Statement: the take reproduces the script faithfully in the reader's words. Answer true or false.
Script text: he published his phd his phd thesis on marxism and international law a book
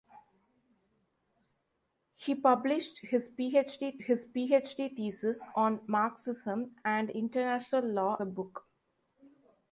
true